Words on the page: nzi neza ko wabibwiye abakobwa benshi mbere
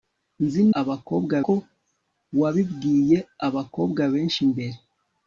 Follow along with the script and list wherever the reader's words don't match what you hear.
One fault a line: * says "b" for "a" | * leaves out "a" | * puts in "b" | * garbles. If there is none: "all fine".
* says "abakobwa" for "neza"